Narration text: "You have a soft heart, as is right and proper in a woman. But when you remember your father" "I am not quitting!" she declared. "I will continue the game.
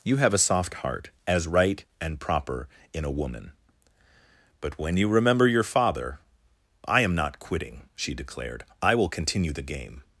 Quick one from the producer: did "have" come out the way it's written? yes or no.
yes